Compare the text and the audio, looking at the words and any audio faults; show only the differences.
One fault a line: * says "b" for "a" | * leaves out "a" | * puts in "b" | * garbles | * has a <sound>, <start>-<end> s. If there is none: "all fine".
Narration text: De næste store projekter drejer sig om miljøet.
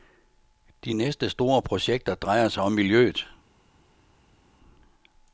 all fine